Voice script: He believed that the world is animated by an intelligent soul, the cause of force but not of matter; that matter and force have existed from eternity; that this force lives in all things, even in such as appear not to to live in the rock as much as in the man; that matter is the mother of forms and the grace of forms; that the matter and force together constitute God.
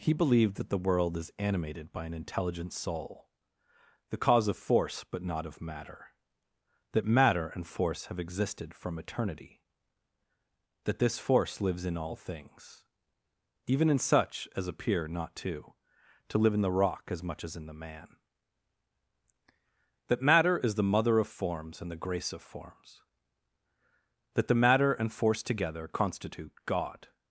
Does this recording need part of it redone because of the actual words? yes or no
no